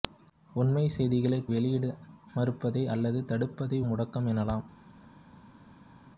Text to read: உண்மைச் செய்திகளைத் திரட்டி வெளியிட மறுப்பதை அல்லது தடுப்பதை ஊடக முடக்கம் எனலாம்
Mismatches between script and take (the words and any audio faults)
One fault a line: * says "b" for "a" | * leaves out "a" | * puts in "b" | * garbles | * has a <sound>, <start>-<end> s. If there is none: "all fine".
* leaves out "திரட்டி"
* leaves out "ஊடக"